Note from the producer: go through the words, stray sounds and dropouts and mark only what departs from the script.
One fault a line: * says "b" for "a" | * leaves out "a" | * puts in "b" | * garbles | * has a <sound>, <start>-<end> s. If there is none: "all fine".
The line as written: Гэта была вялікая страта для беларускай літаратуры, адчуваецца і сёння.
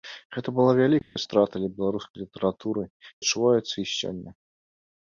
* has a dropout, 1.0-1.2 s